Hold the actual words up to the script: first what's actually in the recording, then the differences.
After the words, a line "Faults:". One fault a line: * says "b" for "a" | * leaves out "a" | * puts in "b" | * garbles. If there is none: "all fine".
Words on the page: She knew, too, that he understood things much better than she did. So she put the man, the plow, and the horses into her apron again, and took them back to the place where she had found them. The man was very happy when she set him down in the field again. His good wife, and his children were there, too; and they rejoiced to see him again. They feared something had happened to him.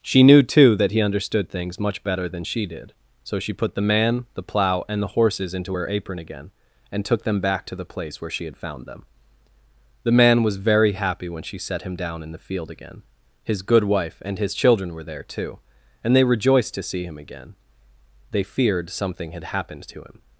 She knew, too, that he understood things much better than she did. So she put the man, the plow, and the horses into her apron again, and took them back to the place where she had found them. The man was very happy when she set him down in the field again. His good wife, and his children were there, too; and they rejoiced to see him again. They feared something had happened to him.
Faults:
all fine